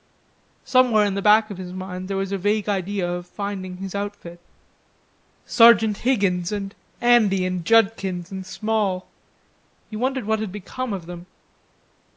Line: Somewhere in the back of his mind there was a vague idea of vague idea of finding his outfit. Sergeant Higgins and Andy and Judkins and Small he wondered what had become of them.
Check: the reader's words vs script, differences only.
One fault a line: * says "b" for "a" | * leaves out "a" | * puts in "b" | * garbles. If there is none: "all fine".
* leaves out "vague idea of"